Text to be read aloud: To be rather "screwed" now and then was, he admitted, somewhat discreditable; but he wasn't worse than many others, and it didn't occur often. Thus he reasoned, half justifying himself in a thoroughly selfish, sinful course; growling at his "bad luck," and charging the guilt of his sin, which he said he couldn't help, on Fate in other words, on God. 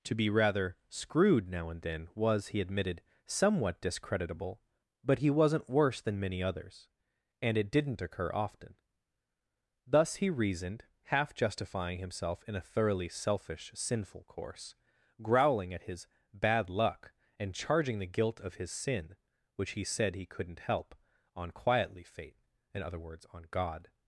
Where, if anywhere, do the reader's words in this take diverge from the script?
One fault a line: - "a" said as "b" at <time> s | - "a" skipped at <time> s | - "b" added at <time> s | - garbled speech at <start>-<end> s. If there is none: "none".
- "quietly" added at 21.5 s